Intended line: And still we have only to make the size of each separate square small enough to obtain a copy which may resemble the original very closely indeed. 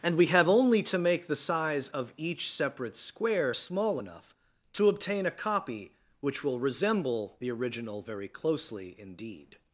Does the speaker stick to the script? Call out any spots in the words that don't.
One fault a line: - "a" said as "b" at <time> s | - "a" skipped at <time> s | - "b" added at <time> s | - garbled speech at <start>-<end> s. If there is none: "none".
- "still" skipped at 0.1 s
- "may" said as "will" at 6.4 s